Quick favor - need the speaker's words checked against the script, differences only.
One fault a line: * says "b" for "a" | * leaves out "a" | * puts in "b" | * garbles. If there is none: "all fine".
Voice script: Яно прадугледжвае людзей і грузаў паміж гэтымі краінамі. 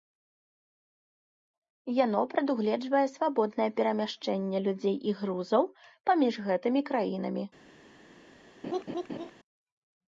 * puts in "свабоднае перамяшчэнне"